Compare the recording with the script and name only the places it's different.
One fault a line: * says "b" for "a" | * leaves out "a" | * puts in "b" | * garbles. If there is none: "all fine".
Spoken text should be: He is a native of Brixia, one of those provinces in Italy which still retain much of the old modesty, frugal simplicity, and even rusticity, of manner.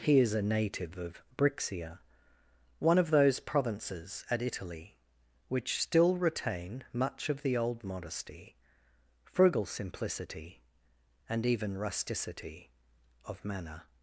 * says "at" for "in"